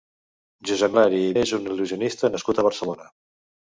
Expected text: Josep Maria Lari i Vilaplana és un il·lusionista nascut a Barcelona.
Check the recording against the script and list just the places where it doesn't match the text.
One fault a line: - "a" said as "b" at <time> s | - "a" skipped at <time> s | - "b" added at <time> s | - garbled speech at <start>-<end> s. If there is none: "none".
- "Maria" skipped at 0.9 s
- "Vilaplana" skipped at 1.3 s